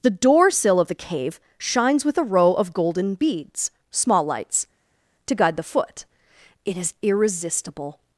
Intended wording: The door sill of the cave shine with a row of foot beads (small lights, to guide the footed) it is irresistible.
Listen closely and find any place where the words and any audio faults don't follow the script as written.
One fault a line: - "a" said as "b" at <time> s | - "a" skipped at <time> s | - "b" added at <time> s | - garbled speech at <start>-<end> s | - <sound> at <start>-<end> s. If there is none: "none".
- "shine" said as "shines" at 1.6 s
- "foot" said as "golden" at 2.7 s
- "footed" said as "foot" at 5.6 s